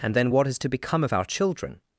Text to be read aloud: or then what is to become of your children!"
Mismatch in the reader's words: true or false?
true